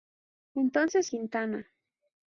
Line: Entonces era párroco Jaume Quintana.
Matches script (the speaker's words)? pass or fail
fail